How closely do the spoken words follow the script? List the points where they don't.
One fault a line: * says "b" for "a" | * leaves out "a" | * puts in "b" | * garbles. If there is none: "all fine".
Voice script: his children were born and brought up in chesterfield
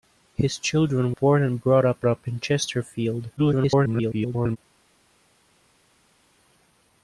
* leaves out "were"
* puts in "up"
* garbles